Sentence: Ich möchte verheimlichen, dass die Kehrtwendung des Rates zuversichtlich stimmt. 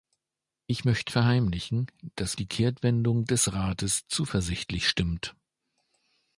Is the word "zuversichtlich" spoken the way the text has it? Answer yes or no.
yes